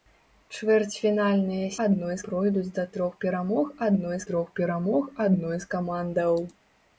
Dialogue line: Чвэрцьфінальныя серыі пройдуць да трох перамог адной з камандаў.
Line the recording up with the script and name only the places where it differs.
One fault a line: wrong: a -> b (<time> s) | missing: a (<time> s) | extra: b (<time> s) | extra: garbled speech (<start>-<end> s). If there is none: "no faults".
wrong: серыі -> адной (1.9 s)
extra: трох перамог адной (4.3 s)